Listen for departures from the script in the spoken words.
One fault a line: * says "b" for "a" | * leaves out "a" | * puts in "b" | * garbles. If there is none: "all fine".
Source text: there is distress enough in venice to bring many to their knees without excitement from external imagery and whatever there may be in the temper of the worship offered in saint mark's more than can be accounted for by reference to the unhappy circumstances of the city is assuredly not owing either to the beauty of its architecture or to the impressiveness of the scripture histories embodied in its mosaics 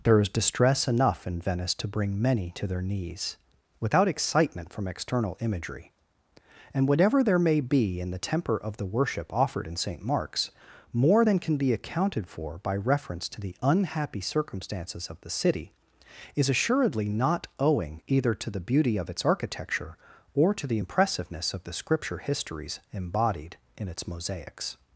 all fine